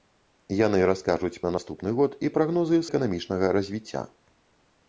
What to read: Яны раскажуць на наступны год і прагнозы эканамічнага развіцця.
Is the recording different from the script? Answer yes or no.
no